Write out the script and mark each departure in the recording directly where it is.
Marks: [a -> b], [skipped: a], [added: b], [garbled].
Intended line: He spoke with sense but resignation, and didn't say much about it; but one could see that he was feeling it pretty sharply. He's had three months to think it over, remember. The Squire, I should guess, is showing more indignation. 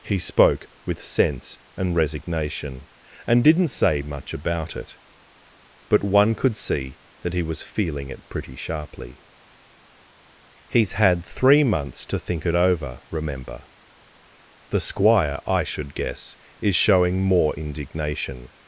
He spoke with sense [but -> and] resignation, and didn't say much about it; but one could see that he was feeling it pretty sharply. He's had three months to think it over, remember. The Squire, I should guess, is showing more indignation.